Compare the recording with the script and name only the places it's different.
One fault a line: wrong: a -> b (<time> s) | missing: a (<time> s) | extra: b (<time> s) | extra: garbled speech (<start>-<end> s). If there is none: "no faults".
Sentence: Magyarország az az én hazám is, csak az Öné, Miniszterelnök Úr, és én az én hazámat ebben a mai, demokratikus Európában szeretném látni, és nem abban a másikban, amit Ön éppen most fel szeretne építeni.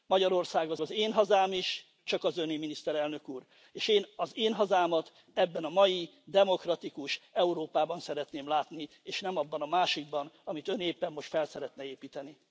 no faults